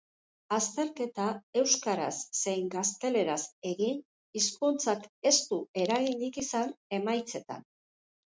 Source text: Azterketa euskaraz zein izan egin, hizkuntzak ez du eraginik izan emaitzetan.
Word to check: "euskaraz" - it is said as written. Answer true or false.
true